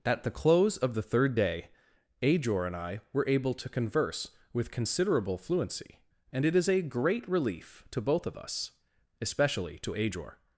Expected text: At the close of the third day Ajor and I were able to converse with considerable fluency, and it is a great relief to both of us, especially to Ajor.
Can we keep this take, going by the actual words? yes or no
yes